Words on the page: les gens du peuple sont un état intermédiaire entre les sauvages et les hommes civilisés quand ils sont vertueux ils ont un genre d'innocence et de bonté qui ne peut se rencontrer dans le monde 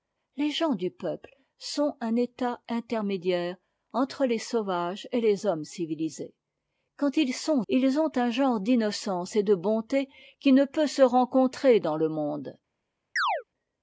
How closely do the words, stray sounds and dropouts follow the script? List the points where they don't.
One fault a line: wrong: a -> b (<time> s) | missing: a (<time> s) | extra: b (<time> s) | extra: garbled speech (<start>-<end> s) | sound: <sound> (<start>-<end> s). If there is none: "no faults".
missing: vertueux (7.6 s)
sound: chirp (13.2-13.4 s)